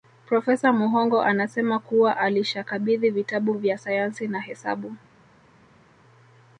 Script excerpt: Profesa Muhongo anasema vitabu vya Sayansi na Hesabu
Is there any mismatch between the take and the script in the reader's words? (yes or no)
yes